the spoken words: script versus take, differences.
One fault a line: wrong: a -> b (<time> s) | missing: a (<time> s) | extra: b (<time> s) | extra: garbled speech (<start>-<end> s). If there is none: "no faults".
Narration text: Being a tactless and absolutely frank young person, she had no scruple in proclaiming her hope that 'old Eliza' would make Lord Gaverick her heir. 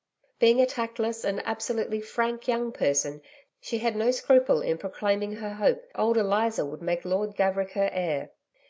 missing: that (5.8 s)